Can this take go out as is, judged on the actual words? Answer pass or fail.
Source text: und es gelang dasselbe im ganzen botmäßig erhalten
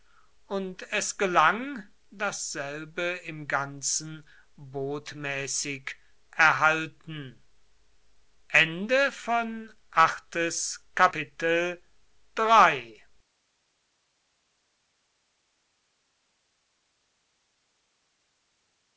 pass